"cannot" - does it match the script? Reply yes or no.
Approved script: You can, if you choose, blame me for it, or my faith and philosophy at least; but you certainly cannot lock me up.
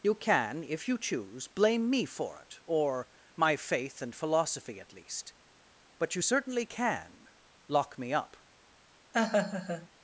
no